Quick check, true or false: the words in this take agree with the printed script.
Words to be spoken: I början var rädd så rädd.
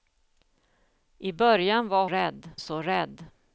true